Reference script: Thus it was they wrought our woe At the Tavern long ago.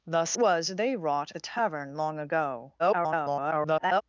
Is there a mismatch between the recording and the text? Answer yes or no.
yes